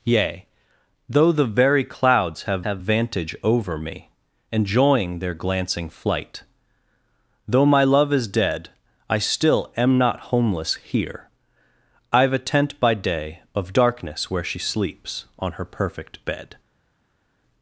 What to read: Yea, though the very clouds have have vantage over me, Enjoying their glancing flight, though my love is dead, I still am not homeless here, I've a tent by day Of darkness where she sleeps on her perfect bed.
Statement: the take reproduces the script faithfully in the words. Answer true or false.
true